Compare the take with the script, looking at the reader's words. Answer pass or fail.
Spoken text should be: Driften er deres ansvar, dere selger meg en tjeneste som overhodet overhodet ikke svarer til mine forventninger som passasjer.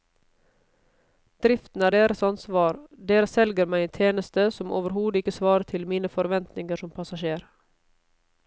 fail